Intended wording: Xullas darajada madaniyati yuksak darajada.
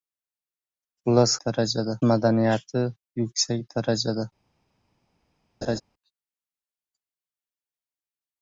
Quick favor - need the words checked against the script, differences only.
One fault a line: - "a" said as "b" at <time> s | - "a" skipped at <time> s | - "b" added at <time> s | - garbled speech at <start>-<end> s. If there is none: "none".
none